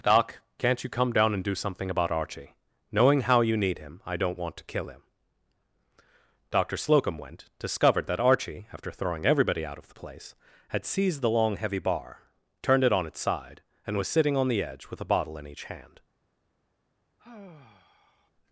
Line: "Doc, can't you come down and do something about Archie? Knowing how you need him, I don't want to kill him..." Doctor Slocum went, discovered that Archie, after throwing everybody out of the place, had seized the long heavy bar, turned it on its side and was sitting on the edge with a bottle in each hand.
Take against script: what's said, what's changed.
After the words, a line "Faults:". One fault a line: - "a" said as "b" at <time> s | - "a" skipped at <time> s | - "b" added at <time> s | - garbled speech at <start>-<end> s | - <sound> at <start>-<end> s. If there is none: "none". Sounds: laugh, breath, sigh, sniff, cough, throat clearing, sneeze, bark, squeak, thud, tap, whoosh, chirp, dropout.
"Doc, can't you come down and do something about Archie? Knowing how you need him, I don't want to kill him..." Doctor Slocum went, discovered that Archie, after throwing everybody out of the place, had seized the long heavy bar, turned it on its side and was sitting on the edge with a bottle in each hand.
Faults:
- sigh at 17.2-18.3 s